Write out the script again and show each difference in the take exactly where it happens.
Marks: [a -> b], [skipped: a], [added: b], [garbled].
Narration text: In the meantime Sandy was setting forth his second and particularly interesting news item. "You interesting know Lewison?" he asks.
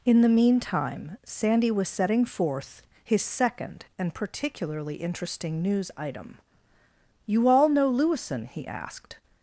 In the meantime Sandy was setting forth his second and particularly interesting news item. "You [interesting -> all] know Lewison?" he [asks. -> asked]